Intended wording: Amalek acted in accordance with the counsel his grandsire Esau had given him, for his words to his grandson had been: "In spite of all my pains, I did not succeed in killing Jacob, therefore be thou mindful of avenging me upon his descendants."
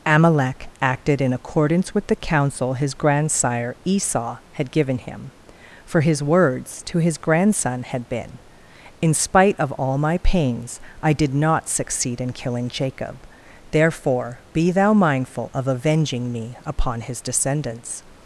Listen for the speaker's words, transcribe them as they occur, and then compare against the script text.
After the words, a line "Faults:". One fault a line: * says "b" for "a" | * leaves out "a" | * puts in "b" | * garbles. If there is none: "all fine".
Amalek acted in accordance with the counsel his grandsire Esau had given him, for his words to his grandson had been: "In spite of all my pains, I did not succeed in killing Jacob, therefore be thou mindful of avenging me upon his descendants."
Faults:
all fine